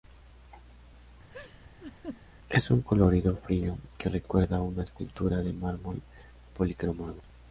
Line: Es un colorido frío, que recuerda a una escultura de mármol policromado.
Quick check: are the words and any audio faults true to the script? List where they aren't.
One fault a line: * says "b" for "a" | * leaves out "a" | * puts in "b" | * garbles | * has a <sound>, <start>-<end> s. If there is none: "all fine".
* has a laugh, 1.3-2.2 s